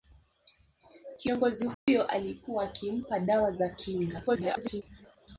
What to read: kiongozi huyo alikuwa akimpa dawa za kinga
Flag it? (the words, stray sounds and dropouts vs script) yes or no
yes